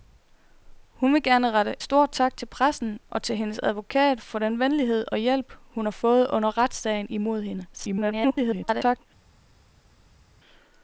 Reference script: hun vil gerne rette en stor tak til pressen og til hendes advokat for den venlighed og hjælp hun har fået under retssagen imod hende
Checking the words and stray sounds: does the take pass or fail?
fail